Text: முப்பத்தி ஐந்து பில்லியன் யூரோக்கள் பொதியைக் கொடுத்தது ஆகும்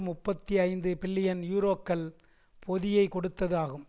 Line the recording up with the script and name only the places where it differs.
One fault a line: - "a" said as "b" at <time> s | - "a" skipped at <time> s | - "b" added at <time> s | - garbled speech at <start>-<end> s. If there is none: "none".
none